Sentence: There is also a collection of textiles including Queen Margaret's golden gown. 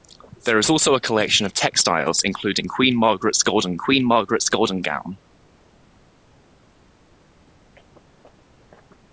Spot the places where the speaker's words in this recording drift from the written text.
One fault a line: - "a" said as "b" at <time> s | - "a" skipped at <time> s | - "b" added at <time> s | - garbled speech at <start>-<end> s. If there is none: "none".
- "Queen Margaret's golden" added at 3.7 s